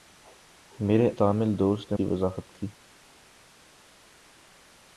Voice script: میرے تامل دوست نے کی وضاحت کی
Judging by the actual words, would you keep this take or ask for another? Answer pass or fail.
pass